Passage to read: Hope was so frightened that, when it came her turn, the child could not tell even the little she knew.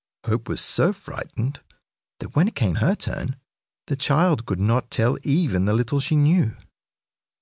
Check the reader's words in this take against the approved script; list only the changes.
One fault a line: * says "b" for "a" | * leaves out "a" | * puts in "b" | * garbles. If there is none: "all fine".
all fine